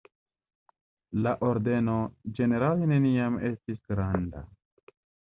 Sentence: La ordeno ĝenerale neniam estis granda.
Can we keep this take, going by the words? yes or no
yes